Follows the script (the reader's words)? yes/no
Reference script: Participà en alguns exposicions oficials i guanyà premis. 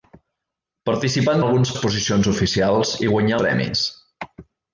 yes